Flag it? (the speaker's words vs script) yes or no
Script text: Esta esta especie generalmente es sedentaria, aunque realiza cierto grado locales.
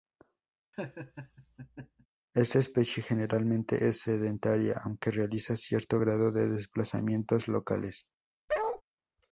yes